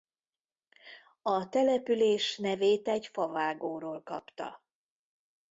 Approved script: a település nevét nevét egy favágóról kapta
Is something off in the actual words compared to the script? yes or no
yes